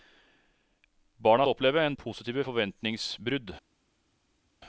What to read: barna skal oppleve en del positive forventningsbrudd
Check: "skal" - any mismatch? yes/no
yes